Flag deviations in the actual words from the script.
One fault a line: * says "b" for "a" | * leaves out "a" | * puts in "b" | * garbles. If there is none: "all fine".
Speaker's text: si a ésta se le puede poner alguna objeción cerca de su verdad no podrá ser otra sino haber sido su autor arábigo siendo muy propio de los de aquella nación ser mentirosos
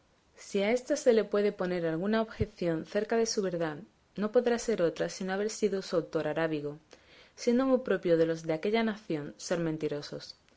all fine